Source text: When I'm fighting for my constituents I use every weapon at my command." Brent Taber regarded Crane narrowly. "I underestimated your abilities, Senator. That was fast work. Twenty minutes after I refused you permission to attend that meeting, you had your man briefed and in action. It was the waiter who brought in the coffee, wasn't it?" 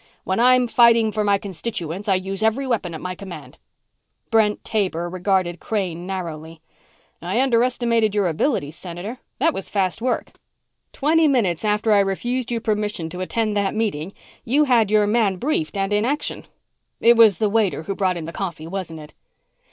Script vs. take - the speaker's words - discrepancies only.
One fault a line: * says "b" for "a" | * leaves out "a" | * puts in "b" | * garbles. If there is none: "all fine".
all fine